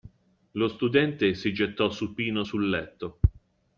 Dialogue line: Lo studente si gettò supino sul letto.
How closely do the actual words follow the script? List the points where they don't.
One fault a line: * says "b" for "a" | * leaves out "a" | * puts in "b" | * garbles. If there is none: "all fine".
all fine